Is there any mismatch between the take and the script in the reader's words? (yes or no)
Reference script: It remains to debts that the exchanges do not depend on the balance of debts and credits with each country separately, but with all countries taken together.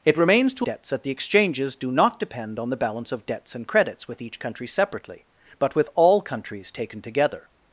no